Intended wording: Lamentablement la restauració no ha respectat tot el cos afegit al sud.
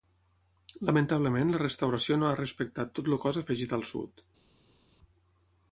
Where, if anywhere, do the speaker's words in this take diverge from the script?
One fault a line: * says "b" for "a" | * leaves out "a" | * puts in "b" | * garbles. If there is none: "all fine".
all fine